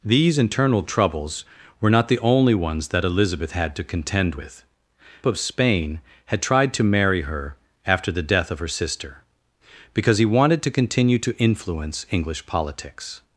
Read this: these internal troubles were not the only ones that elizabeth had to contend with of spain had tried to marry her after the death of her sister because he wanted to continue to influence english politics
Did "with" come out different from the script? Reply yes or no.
no